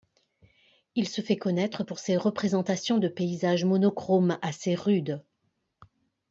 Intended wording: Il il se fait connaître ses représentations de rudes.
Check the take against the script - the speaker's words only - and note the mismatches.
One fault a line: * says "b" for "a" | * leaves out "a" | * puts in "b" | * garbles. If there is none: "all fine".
* leaves out "il"
* puts in "pour"
* puts in "paysages monochromes assez"